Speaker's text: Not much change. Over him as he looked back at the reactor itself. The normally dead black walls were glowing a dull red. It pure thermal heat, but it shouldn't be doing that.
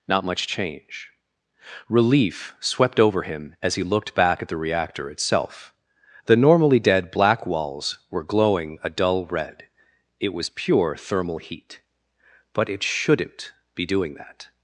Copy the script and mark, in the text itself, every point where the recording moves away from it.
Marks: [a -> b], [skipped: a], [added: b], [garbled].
Not much change. [added: Relief swept] Over him as he looked back at the reactor itself. The normally dead black walls were glowing a dull red. It [added: was] pure thermal heat, but it shouldn't be doing that.